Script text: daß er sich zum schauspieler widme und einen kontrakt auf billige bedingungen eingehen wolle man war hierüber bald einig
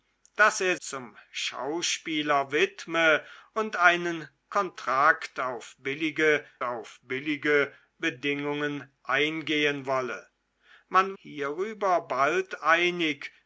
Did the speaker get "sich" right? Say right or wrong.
wrong